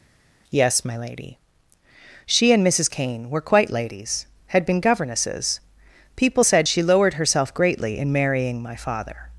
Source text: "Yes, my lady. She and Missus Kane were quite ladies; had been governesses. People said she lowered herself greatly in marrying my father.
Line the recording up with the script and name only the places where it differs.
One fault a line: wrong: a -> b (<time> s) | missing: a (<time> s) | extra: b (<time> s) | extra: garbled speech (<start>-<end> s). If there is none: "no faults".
no faults